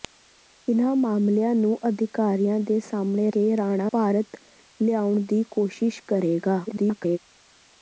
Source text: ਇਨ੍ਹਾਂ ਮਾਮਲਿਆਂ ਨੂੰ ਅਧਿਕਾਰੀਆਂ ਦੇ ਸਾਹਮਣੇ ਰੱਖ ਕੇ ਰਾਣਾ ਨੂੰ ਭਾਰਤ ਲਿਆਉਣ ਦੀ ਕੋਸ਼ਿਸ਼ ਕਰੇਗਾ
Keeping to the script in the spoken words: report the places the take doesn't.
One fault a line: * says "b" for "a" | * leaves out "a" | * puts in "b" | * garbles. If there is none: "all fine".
* leaves out "ਰੱਖ"
* leaves out "ਨੂੰ"
* garbles